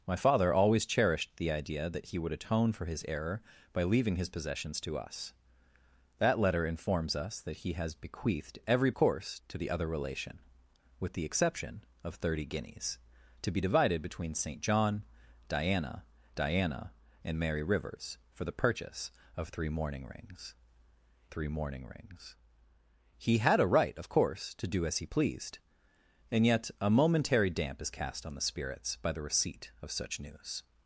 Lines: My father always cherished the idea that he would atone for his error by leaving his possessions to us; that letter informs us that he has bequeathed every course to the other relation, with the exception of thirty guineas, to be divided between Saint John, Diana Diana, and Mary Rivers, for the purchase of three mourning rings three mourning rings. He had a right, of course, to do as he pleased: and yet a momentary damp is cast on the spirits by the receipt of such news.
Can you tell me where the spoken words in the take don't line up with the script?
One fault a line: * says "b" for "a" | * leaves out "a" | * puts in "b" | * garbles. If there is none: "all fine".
all fine